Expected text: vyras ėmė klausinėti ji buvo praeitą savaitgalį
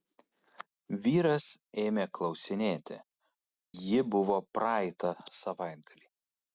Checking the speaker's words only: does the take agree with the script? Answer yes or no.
yes